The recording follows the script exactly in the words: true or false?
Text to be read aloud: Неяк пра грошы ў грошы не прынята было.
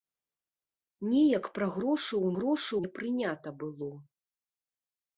true